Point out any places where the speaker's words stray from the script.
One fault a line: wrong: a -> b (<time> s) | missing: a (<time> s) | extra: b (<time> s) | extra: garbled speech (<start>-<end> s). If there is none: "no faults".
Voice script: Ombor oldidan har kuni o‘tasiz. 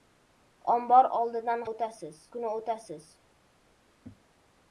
wrong: har -> o‘tasiz (1.7 s)